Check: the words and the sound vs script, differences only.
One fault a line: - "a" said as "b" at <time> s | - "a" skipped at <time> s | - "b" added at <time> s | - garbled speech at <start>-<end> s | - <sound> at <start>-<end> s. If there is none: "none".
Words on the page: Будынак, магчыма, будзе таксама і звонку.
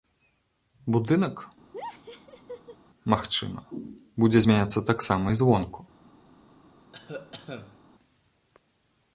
- laugh at 1.7-2.8 s
- "змяняцца" added at 4.4 s
- cough at 6.9-7.8 s